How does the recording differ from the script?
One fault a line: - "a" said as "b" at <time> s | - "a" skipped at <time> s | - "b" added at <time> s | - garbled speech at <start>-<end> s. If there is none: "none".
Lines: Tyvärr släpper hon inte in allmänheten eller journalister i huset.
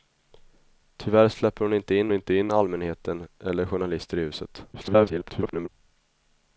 - "inte in" added at 2.1 s
- garbled speech at 4.7-5.7 s